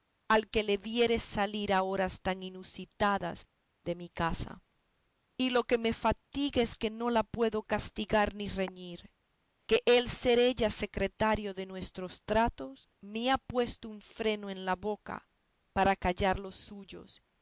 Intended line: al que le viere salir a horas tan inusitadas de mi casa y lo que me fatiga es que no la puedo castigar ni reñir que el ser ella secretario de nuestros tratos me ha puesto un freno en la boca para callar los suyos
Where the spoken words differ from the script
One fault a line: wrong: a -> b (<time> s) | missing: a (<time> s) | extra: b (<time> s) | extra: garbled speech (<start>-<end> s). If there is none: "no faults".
no faults